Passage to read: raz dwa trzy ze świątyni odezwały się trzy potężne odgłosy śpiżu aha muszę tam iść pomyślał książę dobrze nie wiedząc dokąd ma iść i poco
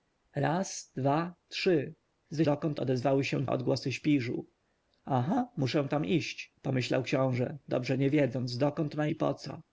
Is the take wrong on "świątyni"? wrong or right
wrong